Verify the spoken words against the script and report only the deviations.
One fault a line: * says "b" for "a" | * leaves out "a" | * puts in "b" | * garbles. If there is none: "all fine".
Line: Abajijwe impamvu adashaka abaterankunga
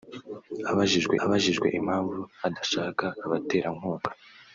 * puts in "abajijwe"